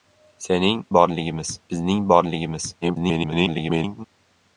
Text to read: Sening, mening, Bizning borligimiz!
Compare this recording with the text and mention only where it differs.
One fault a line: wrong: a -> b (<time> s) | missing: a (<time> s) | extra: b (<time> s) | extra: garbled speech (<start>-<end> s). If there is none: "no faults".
wrong: mening -> borligimiz (0.9 s)
extra: garbled speech (2.8-4.1 s)